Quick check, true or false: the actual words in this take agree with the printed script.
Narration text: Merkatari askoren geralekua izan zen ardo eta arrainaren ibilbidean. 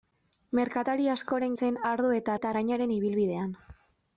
false